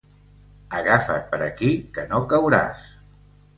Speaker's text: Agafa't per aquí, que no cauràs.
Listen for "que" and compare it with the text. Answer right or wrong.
right